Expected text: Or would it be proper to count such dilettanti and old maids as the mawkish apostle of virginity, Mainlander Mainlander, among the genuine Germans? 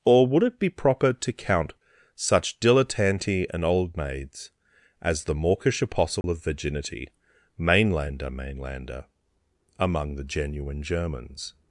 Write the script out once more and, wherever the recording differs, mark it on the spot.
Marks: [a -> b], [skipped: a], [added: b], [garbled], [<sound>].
Or would it be proper to count such dilettanti and old maids as the mawkish apostle [dropout] of virginity, Mainlander Mainlander, among the genuine Germans?